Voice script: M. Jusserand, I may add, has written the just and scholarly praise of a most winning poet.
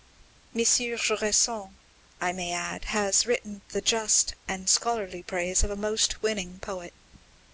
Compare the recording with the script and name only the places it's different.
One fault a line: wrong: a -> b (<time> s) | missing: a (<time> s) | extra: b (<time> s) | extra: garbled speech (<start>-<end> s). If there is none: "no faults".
no faults